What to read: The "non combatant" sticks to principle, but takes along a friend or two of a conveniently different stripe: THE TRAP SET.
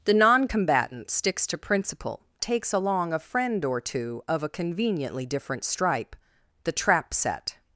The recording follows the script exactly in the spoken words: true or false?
false